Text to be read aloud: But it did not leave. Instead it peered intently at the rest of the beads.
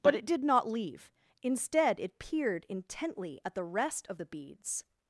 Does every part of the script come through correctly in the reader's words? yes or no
yes